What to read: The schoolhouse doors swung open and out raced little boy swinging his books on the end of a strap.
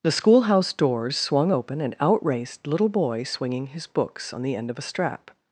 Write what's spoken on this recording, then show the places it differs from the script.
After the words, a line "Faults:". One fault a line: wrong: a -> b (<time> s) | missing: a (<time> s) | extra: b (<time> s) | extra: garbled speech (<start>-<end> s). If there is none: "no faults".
The schoolhouse doors swung open and out raced little boy swinging his books on the end of a strap.
Faults:
no faults